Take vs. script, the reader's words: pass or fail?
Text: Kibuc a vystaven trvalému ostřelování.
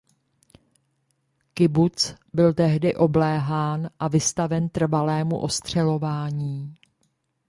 fail